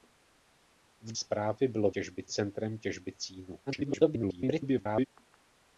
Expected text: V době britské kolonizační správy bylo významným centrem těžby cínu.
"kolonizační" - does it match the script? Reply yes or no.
no